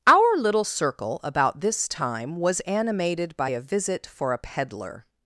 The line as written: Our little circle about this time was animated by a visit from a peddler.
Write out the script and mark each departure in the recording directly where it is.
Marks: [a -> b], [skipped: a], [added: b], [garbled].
Our little circle about this time was animated by a visit [from -> for] a peddler.